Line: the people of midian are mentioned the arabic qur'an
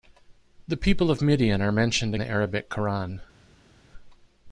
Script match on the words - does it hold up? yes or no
yes